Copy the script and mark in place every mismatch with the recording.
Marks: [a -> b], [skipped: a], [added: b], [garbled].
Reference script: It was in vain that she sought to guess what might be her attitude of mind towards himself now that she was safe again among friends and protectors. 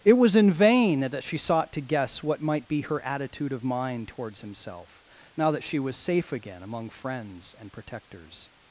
It was in vain that she sought to guess what might be her attitude of mind towards himself now that she was safe again among friends and protectors.